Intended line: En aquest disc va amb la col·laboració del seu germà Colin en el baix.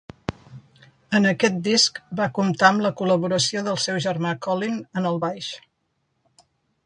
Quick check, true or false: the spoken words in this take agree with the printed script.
false